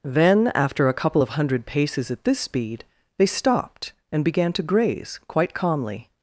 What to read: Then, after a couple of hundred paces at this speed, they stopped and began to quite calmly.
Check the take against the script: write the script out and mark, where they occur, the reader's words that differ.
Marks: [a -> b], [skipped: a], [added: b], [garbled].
Then, after a couple of hundred paces at this speed, they stopped and began to [added: graze] quite calmly.